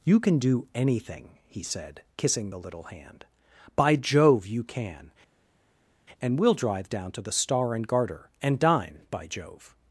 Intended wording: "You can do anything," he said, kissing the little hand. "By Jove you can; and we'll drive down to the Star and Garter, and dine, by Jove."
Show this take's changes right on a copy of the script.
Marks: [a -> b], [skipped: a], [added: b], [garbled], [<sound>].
"You can do anything," he said, kissing the little hand. "By Jove you can; and we'll drive down to the Star and Garter, and dine, by Jove."